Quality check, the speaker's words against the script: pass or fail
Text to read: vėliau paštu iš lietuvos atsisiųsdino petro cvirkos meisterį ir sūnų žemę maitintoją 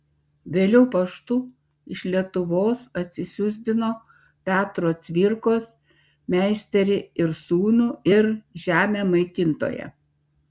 fail